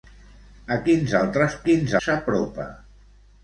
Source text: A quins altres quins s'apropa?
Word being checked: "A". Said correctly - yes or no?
yes